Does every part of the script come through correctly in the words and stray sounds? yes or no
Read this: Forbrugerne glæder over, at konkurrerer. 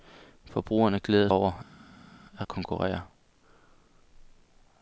yes